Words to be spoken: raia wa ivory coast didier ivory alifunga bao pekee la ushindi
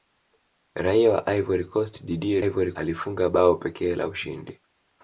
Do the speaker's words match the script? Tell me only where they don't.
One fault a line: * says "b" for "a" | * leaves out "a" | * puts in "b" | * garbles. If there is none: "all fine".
all fine